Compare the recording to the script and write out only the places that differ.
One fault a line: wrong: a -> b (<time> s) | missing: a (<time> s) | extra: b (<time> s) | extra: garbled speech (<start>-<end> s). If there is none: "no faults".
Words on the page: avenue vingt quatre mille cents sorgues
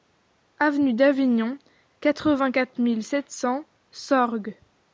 extra: d'avignon quatre (0.9 s)
extra: sept (3.0 s)